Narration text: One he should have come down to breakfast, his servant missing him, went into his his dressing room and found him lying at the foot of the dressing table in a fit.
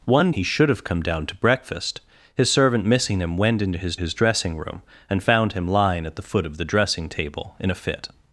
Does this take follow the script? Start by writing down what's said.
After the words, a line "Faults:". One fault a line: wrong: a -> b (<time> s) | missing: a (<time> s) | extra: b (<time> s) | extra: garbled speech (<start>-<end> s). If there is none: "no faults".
One he should have come down to breakfast, his servant missing him, went into his his dressing room and found him lying at the foot of the dressing table in a fit.
Faults:
no faults